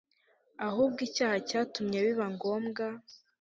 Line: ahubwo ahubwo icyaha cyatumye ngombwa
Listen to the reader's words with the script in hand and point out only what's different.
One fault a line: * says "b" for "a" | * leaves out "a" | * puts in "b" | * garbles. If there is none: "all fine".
* leaves out "ahubwo"
* puts in "biba"